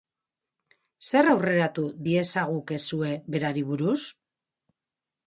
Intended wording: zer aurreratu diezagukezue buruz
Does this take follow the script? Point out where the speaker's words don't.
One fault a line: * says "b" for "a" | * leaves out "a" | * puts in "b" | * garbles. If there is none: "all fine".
* puts in "berari"